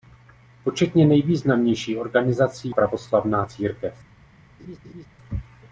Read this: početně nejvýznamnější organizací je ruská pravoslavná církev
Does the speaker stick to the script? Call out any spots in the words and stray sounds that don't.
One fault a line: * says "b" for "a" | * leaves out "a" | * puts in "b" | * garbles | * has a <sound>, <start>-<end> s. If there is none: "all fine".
* leaves out "je ruská"
* has a laugh, 4.6-5.1 s